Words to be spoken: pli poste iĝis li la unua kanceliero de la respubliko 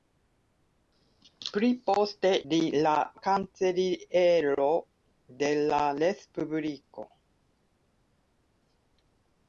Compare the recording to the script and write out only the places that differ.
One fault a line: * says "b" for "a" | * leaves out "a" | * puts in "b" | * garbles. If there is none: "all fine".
* leaves out "iĝis"
* leaves out "unua"